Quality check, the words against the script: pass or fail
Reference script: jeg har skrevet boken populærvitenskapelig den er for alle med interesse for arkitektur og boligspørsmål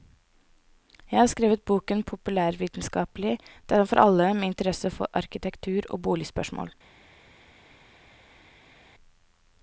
pass